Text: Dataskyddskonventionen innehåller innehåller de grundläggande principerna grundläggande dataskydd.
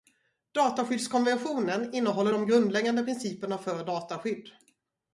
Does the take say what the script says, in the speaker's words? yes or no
no